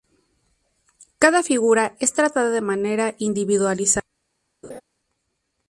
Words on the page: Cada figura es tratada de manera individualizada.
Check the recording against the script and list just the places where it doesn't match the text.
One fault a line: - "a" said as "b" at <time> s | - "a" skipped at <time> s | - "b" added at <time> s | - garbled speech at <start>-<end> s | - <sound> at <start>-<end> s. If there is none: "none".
- laugh at 4.6-4.8 s